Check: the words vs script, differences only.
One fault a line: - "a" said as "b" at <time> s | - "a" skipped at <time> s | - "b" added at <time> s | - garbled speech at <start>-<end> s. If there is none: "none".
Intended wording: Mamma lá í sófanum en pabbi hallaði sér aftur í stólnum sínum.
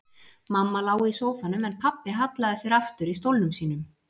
none